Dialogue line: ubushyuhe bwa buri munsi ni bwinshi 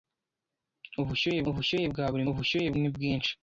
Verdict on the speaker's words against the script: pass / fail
fail